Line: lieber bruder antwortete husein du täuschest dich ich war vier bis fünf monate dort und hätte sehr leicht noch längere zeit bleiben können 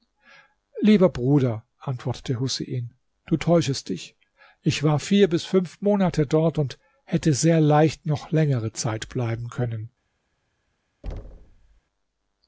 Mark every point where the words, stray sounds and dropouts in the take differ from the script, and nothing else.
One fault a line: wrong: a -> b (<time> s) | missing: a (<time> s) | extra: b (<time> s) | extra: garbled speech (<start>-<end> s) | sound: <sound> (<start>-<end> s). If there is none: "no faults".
sound: thud (11.0-11.8 s)